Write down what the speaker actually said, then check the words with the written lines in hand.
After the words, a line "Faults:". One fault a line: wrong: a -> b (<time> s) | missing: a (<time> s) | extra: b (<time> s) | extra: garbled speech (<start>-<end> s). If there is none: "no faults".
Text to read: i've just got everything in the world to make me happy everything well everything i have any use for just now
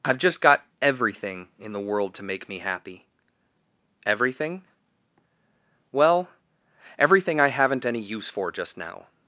i've just got everything in the world to make me happy everything well everything i haven't any use for just now
Faults:
wrong: have -> haven't (7.5 s)